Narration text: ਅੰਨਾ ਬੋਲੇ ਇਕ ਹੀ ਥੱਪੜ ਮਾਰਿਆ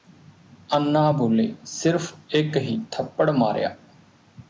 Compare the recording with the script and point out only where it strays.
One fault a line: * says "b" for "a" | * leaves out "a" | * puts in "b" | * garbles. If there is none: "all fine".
* puts in "ਸਿਰਫ"